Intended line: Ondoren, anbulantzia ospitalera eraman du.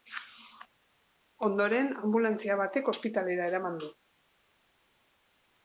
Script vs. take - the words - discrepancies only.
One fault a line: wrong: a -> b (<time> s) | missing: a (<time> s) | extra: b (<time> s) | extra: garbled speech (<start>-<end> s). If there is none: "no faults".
extra: batek (2.6 s)